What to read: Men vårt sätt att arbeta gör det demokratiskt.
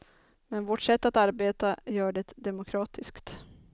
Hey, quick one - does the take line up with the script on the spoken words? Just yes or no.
yes